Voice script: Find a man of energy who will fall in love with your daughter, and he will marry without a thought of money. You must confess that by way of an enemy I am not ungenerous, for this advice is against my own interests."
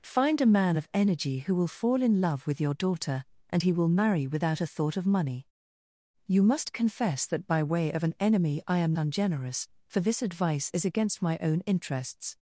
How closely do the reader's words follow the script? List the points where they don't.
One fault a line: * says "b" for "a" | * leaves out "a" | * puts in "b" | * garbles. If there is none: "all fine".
* leaves out "not"